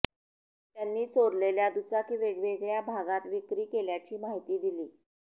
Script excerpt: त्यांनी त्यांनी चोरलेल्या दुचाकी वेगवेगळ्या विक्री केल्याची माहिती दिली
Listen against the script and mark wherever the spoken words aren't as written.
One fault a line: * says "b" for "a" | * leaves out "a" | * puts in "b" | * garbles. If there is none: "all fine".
* leaves out "त्यांनी"
* puts in "भागात"